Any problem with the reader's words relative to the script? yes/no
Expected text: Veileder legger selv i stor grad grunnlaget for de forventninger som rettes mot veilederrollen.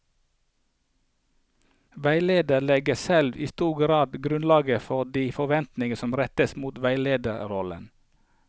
no